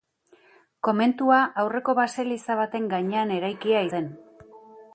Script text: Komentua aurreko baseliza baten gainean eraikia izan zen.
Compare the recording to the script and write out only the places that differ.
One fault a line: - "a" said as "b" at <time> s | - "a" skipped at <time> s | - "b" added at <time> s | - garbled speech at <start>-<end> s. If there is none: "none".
- "izan" skipped at 3.9 s